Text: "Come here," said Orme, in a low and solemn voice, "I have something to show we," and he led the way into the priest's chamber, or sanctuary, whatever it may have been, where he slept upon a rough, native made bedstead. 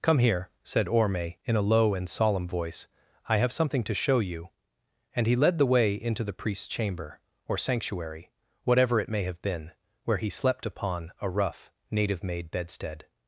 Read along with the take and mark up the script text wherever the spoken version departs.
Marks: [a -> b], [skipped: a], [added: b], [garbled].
"Come here," said Orme, in a low and solemn voice, "I have something to show [we," -> you] and he led the way into the priest's chamber, or sanctuary, whatever it may have been, where he slept upon a rough, native made bedstead.